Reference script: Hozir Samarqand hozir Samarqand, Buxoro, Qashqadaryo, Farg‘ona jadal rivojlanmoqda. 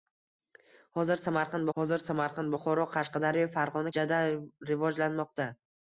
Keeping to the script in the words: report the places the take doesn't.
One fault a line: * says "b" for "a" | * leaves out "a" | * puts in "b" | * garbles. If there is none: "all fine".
all fine